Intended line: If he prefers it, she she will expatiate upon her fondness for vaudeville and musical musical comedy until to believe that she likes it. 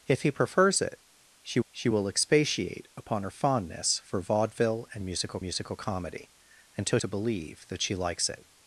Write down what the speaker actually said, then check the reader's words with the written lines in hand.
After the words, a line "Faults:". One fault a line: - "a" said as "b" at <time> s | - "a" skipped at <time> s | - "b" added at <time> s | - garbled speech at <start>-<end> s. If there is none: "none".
If he prefers it, she she will expatiate upon her fondness for vaudeville and musical musical comedy until to believe that she likes it.
Faults:
none